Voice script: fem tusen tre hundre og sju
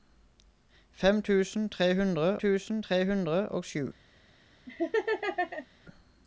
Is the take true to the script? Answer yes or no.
no